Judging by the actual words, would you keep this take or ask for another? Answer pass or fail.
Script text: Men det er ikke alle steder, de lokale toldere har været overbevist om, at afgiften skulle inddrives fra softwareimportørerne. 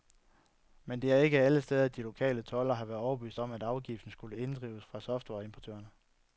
pass